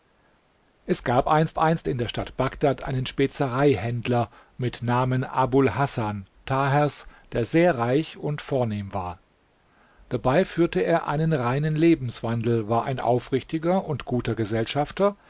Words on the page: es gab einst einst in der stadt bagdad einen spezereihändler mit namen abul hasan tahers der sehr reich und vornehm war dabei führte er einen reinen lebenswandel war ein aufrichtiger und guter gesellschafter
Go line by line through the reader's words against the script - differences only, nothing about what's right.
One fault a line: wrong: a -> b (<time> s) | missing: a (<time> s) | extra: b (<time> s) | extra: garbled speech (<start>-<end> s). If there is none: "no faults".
no faults